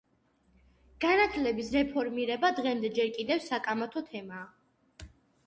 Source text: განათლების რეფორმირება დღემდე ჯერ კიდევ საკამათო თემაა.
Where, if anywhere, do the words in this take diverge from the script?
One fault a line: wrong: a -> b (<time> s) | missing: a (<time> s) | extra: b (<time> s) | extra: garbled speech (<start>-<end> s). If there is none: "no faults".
no faults